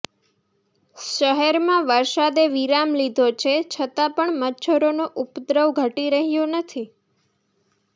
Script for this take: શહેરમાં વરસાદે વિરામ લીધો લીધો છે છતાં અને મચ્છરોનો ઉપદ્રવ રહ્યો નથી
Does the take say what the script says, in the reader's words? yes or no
no